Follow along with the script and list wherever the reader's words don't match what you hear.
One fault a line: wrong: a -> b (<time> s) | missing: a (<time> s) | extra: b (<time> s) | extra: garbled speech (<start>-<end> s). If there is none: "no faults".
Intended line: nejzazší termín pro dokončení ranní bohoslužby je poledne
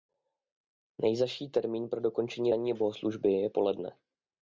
no faults